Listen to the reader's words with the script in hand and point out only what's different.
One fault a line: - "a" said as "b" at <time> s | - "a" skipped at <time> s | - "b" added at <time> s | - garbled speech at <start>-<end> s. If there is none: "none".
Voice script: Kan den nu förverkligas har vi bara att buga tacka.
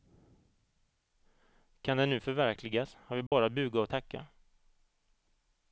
- "och" added at 3.8 s